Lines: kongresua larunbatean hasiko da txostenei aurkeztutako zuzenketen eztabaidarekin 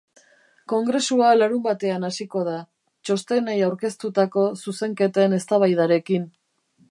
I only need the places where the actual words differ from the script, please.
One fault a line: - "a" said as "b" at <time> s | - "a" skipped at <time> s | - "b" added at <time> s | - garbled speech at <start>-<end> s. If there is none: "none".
none